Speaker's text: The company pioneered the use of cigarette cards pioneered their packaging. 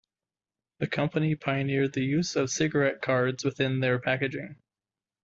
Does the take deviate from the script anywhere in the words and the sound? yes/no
yes